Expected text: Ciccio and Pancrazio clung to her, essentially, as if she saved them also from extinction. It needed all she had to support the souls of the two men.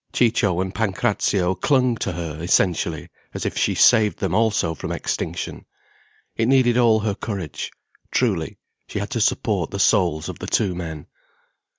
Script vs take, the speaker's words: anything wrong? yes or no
yes